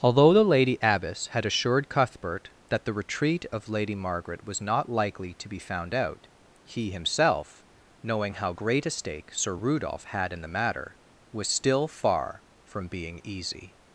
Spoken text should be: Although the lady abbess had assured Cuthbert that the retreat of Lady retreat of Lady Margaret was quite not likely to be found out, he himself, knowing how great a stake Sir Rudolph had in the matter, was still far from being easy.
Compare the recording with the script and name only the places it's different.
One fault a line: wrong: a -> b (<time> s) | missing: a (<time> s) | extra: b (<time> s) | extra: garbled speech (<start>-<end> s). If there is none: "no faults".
missing: retreat of Lady (3.9 s)
missing: quite (4.6 s)